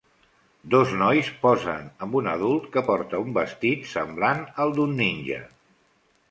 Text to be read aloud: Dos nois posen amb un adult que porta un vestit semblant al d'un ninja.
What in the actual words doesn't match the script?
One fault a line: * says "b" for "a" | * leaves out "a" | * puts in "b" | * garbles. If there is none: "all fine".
all fine